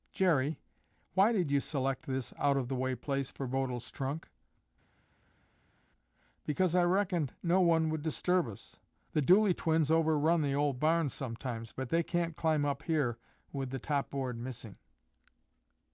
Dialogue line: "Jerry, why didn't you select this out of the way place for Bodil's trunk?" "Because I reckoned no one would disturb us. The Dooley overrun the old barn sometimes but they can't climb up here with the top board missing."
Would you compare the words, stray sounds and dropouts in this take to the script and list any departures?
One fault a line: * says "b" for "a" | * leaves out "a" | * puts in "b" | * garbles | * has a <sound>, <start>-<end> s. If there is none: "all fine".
* says "did" for "didn't"
* puts in "twins"